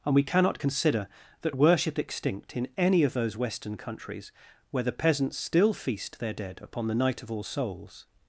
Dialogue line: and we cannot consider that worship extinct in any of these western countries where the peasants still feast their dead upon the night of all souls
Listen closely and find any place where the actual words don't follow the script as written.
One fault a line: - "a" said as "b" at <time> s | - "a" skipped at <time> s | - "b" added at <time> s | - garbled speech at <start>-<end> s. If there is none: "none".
- "these" said as "those" at 3.1 s